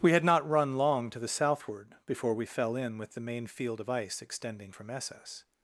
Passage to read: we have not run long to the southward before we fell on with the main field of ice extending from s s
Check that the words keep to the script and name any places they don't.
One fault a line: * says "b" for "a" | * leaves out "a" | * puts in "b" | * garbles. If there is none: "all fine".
* says "had" for "have"
* says "in" for "on"